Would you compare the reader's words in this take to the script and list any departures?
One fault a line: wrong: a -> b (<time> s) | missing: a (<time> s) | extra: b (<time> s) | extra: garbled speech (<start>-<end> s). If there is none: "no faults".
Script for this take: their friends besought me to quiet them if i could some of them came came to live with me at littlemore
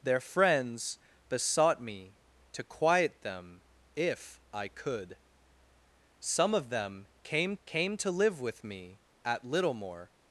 no faults